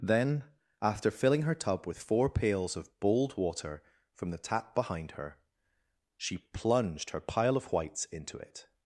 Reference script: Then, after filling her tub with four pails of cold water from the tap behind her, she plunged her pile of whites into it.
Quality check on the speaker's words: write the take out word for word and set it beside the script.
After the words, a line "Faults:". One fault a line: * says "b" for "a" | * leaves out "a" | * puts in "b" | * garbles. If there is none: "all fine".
Then, after filling her tub with four pails of bold water from the tap behind her, she plunged her pile of whites into it.
Faults:
* says "bold" for "cold"